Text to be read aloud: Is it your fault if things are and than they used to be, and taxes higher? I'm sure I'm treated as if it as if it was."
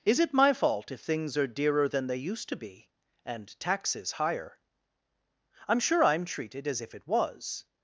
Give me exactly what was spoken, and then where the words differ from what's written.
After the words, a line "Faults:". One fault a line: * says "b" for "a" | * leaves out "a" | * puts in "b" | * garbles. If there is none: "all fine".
Is it my fault if things are dearer than they used to be, and taxes higher? I'm sure I'm treated as if it was."
Faults:
* says "my" for "your"
* says "dearer" for "and"
* leaves out "as if it"